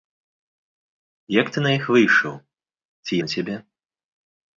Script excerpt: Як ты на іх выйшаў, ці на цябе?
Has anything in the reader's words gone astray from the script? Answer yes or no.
no